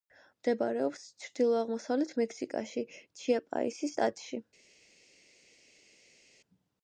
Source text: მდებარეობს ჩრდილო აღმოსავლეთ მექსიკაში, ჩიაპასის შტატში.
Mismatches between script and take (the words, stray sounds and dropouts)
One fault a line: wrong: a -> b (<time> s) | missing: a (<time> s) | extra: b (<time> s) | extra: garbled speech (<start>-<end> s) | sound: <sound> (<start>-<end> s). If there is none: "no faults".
no faults